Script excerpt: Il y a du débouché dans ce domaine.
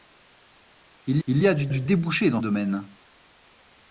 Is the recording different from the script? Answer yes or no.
yes